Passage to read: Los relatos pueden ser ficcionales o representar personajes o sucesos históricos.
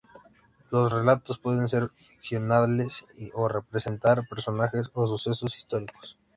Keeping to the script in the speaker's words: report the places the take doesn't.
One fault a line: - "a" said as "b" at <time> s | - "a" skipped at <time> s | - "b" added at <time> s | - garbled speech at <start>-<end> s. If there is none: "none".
none